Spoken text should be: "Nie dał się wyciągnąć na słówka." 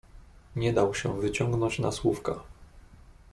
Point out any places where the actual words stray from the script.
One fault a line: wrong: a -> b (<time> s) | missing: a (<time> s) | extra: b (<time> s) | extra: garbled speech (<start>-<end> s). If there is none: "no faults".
no faults